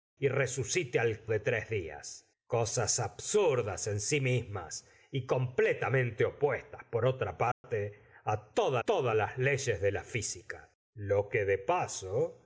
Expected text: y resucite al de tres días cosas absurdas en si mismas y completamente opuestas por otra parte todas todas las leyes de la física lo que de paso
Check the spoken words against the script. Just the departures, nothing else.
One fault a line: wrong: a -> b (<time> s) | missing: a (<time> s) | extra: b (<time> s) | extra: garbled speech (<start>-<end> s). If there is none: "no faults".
no faults